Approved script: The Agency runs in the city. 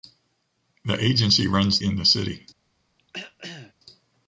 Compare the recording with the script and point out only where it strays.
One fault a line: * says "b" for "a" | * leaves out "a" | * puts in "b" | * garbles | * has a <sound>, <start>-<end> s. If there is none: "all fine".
* has a throat clearing, 3.0-3.7 s